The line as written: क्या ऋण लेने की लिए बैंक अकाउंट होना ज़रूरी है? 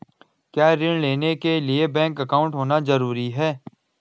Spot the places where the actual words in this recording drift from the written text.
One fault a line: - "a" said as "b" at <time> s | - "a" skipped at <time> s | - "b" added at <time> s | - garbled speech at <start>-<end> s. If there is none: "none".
- "की" said as "के" at 1.4 s